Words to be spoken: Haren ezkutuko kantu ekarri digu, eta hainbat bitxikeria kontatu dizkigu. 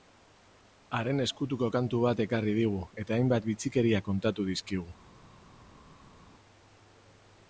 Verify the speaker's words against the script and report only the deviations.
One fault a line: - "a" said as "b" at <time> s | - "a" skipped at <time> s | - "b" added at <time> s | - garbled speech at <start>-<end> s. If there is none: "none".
- "bat" added at 2.1 s